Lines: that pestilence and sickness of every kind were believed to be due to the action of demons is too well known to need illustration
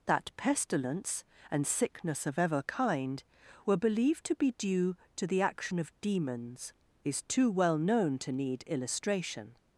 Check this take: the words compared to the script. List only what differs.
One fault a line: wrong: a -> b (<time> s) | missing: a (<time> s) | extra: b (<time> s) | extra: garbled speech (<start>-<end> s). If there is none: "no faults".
wrong: every -> ever (2.4 s)